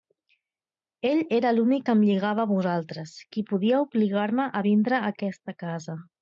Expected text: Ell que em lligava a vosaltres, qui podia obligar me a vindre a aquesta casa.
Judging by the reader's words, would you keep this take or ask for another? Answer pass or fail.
fail